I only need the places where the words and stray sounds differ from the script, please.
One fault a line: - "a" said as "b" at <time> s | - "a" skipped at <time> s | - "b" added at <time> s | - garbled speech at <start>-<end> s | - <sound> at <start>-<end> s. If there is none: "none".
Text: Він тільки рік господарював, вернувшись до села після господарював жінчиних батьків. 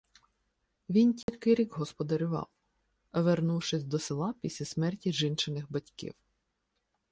- dropout at 1.2-1.3 s
- "господарював" said as "смерті" at 4.7 s